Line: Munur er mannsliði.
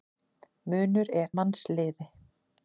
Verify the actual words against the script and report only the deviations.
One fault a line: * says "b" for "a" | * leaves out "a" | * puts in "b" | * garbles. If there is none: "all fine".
all fine